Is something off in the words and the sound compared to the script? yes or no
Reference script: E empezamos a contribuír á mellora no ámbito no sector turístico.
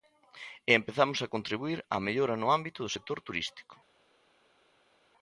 yes